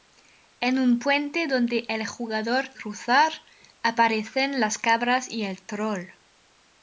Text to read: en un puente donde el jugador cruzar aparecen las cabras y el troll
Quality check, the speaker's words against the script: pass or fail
pass